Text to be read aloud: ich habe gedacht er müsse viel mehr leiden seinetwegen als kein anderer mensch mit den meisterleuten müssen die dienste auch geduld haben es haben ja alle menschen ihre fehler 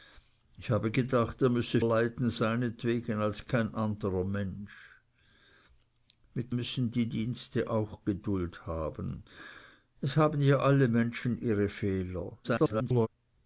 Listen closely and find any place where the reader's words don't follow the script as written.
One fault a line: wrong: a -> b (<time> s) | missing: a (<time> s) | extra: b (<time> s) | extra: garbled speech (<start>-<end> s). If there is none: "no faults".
missing: viel mehr (1.8 s)
missing: den meisterleuten (6.5 s)
extra: garbled speech (12.4-13.1 s)